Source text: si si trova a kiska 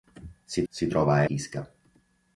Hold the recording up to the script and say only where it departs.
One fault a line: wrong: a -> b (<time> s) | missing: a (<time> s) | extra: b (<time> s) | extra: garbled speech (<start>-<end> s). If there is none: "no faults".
no faults